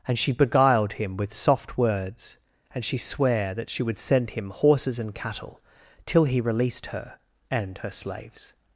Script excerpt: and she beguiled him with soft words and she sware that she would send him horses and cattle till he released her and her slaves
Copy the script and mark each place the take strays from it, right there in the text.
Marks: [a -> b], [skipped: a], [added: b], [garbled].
and she beguiled him with soft words and she sware that she would send him horses and cattle till he released her and her slaves